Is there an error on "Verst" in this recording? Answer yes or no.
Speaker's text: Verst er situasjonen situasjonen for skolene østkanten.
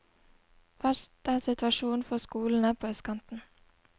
no